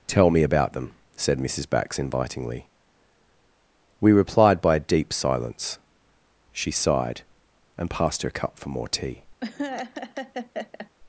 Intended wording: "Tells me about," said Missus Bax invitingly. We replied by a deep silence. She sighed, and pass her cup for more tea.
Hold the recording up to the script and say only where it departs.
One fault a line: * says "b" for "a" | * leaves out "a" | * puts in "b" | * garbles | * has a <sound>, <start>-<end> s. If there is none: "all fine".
* says "Tell" for "Tells"
* puts in "them"
* says "passed" for "pass"
* has a laugh, 9.4-10.9 s